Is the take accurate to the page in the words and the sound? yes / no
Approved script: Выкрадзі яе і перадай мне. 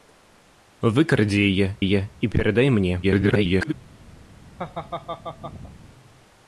no